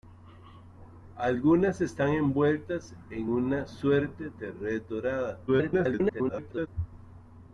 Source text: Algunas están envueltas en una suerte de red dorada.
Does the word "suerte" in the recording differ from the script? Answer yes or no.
no